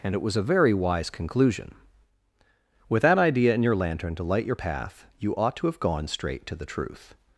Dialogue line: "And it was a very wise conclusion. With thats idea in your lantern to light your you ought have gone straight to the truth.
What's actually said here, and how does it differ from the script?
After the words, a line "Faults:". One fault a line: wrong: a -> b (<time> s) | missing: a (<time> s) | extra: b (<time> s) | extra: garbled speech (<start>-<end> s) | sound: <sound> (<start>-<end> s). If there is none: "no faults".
"And it was a very wise conclusion. With that idea in your lantern to light your path, you ought to have gone straight to the truth.
Faults:
wrong: thats -> that (3.0 s)
extra: path (4.5 s)
extra: to (5.6 s)